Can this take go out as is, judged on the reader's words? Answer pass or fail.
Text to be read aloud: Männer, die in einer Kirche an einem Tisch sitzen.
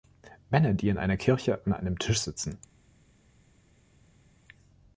pass